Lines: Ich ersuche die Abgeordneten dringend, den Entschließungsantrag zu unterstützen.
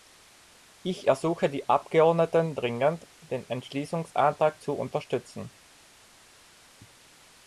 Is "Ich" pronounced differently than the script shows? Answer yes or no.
no